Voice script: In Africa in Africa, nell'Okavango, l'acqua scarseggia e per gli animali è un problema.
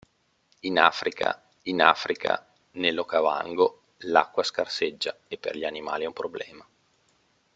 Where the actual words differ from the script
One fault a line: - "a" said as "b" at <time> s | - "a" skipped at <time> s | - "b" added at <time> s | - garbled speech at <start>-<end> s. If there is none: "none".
none